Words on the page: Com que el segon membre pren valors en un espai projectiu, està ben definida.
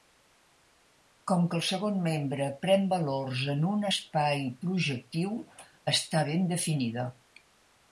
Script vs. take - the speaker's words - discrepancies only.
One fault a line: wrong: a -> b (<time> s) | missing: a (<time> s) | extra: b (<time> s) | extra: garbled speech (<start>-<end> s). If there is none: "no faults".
no faults